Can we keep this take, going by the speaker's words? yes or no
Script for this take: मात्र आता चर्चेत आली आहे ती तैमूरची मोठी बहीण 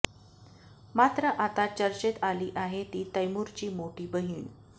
yes